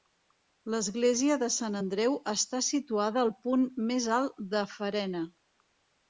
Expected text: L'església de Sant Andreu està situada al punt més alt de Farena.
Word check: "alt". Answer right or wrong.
right